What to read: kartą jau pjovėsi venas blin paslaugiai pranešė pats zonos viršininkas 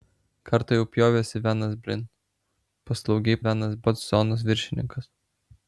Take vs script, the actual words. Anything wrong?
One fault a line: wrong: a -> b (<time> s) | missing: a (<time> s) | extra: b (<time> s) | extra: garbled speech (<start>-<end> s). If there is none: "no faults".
wrong: pranešė -> venas (3.5 s)